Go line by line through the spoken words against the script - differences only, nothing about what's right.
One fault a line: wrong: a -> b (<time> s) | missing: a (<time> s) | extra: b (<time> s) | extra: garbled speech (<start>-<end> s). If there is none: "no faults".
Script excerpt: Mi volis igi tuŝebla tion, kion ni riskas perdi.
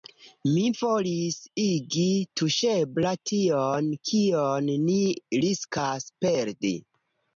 no faults